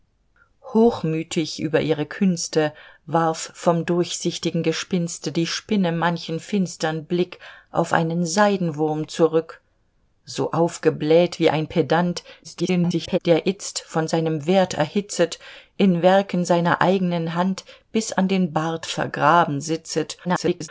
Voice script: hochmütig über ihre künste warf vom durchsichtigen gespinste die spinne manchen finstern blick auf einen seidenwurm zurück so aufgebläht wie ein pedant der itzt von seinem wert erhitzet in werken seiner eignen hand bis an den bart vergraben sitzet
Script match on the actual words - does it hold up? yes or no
no